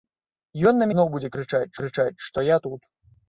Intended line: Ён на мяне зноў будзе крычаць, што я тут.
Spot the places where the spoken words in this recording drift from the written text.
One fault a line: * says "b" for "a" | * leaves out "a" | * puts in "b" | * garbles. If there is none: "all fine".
* leaves out "мяне"
* puts in "крычаць"